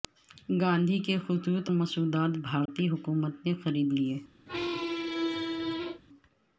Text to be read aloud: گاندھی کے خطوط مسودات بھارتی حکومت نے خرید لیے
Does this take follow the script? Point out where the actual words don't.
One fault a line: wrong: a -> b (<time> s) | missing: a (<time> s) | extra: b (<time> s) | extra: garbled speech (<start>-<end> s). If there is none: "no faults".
no faults